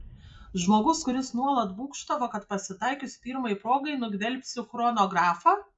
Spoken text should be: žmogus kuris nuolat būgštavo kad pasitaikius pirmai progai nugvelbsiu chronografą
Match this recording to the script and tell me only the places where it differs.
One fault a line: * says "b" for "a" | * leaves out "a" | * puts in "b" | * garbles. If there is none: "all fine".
all fine